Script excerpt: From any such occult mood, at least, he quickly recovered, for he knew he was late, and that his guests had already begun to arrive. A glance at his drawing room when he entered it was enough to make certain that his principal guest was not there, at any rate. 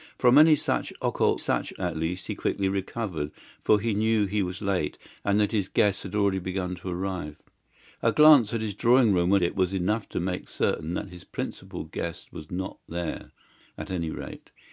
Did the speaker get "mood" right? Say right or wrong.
wrong